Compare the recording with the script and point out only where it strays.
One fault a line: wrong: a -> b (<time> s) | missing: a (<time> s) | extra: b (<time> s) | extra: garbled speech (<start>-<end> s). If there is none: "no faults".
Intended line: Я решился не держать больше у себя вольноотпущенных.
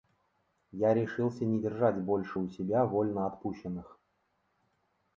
no faults